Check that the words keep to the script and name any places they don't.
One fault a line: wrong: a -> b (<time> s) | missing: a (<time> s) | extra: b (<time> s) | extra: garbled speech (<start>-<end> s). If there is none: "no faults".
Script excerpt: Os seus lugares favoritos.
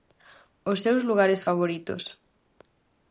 no faults